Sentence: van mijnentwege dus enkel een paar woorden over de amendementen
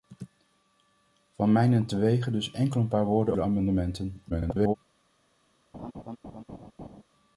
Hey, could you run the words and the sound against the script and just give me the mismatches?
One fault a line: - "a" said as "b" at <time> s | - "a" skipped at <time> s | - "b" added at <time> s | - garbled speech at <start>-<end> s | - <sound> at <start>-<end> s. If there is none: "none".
- "over" skipped at 3.4 s
- garbled speech at 4.3-4.7 s
- laugh at 5.7-7.0 s